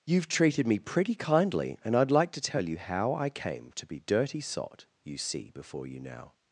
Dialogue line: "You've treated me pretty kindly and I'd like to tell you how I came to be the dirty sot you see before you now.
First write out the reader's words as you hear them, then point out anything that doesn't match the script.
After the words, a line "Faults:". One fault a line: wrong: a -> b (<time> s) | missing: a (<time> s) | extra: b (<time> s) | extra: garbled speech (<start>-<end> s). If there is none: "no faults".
"You've treated me pretty kindly and I'd like to tell you how I came to be dirty sot you see before you now.
Faults:
missing: the (4.0 s)